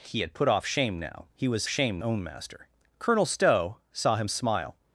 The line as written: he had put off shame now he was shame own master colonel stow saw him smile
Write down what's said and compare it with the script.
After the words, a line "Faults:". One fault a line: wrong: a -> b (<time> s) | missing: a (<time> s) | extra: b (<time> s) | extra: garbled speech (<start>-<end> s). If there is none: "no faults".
he had put off shame now he was shame own master colonel stow saw him smile
Faults:
no faults